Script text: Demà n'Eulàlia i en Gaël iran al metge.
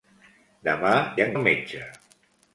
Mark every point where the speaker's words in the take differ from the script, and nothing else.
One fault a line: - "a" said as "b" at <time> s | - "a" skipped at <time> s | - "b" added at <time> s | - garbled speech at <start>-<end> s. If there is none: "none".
- "n'Eulàlia" skipped at 0.9 s
- "Gaël iran" skipped at 1.4 s